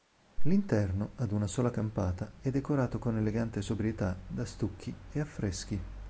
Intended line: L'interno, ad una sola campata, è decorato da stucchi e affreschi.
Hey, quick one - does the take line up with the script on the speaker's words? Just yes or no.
no